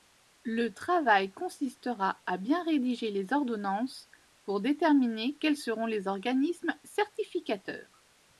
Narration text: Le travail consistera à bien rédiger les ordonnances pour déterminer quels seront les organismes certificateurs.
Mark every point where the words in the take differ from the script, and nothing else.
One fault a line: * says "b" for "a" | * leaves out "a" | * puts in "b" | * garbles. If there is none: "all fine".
all fine